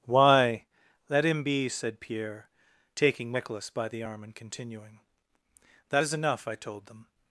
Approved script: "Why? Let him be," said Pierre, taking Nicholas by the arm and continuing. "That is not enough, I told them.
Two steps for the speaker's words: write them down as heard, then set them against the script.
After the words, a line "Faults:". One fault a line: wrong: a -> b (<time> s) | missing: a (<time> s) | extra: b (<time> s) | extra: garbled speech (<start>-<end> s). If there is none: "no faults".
"Why? Let him be," said Pierre, taking Nicholas by the arm and continuing. "That is enough, I told them.
Faults:
missing: not (6.1 s)